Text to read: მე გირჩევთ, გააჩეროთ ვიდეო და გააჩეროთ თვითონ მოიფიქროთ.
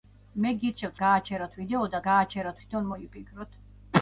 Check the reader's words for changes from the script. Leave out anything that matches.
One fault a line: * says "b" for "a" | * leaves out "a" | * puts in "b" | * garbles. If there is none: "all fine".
all fine